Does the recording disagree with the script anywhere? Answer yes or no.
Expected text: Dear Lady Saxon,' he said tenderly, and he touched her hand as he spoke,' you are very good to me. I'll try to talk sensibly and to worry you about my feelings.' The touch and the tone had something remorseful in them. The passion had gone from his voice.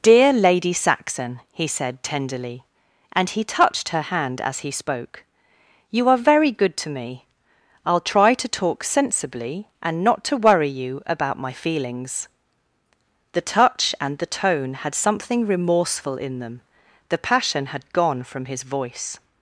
yes